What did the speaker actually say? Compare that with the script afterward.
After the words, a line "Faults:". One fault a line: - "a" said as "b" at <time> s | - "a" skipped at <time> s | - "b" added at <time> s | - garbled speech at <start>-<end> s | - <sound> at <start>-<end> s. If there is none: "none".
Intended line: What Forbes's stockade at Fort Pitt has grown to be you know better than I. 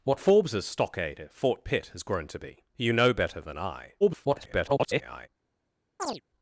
What Forbes's stockade at Fort Pitt has grown to be you know better than I. [garbled]
Faults:
- garbled speech at 4.0-5.3 s
- chirp at 6.0-6.2 s